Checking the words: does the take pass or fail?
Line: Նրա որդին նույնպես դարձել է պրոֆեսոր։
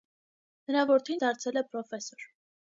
fail